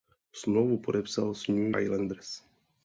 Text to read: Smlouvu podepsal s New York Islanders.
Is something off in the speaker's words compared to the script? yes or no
yes